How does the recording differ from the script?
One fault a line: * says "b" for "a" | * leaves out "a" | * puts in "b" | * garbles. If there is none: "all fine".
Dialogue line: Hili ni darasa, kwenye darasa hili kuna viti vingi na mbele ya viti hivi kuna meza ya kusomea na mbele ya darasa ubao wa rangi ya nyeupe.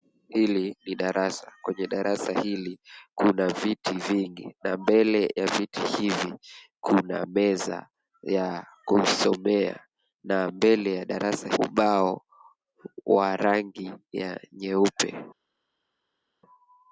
all fine